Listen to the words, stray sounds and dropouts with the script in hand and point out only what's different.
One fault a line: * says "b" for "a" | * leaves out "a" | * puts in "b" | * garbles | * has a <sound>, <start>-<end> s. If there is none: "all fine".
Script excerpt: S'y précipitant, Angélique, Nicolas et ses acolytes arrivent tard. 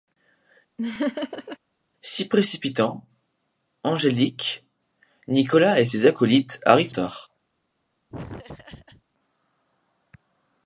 * has a laugh, 0.8-1.6 s
* has a laugh, 8.1-9.0 s